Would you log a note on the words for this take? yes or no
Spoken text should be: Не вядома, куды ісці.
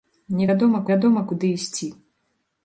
yes